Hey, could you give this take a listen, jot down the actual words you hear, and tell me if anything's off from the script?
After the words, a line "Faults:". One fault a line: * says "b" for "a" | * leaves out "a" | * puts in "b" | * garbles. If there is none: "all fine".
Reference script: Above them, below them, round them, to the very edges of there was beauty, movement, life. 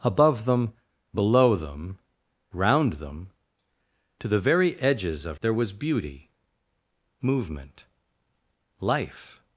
Above them, below them, round them, to the very edges of there was beauty, movement, life.
Faults:
all fine